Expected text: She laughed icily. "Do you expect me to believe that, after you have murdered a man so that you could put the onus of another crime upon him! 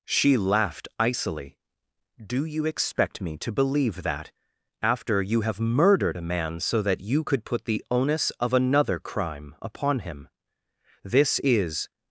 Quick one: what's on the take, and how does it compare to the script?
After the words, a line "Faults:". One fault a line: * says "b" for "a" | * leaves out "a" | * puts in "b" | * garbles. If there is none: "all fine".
She laughed icily. "Do you expect me to believe that, after you have murdered a man so that you could put the onus of another crime upon him! This is
Faults:
* puts in "This is"